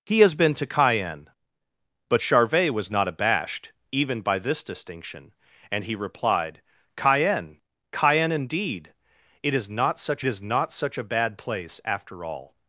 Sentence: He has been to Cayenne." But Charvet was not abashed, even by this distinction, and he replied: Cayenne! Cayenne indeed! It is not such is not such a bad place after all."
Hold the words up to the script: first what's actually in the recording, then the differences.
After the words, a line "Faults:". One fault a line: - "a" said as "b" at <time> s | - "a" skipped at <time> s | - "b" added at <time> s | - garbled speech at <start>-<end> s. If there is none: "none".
He has been to Cayenne." But Charvet was not abashed, even by this distinction, and he replied: Cayenne! Cayenne indeed! It is not such is not such a bad place after all."
Faults:
none